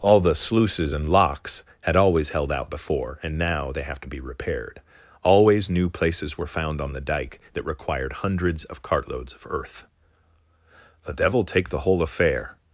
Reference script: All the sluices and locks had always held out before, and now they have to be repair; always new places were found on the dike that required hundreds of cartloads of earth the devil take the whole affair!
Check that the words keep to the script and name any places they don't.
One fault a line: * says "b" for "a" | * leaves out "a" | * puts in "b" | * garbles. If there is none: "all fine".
* says "repaired" for "repair"